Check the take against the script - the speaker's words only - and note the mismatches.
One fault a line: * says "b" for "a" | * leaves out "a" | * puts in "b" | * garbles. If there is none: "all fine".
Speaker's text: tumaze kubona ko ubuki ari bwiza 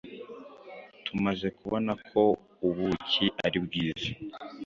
all fine